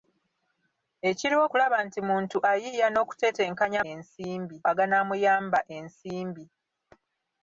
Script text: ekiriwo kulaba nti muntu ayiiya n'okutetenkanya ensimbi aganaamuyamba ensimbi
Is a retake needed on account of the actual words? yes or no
no